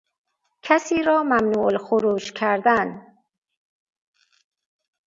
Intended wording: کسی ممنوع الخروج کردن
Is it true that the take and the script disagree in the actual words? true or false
true